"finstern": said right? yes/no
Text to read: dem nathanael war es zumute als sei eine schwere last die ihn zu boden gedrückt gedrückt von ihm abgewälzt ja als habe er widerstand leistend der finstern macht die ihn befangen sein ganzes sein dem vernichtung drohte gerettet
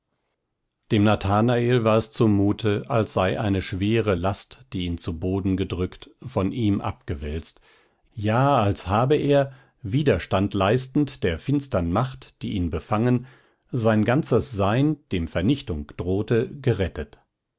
yes